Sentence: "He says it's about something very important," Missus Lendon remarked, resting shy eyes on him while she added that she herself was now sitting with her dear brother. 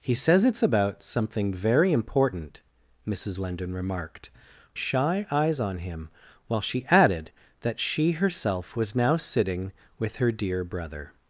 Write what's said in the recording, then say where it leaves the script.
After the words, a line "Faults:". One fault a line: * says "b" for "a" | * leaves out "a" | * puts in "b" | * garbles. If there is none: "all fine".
"He says it's about something very important," Missus Lendon remarked, shy eyes on him while she added that she herself was now sitting with her dear brother.
Faults:
* leaves out "resting"